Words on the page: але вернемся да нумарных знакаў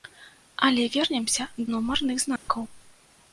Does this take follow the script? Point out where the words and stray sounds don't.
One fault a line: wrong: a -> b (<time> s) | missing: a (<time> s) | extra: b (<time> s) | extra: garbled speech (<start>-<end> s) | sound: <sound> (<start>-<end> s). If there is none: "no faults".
missing: да (1.5 s)
sound: dropout (2.4-2.5 s)